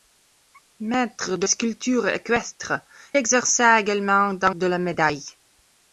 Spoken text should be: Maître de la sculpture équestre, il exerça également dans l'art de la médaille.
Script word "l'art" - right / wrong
wrong